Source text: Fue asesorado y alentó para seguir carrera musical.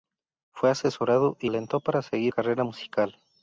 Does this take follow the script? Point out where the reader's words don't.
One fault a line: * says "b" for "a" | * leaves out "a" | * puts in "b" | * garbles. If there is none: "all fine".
all fine